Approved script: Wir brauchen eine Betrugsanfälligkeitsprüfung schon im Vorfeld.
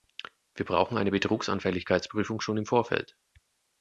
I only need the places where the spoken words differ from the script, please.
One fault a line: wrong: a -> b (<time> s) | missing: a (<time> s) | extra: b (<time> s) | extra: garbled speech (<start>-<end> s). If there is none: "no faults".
no faults